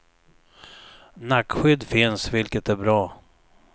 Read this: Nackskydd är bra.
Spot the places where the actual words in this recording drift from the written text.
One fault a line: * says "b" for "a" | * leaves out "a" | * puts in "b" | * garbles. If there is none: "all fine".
* puts in "finns vilket"